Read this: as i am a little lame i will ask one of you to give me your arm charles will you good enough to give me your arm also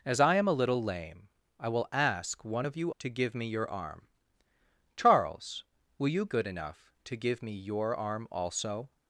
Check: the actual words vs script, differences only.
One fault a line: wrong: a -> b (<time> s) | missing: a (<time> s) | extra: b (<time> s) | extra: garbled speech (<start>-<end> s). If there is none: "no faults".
no faults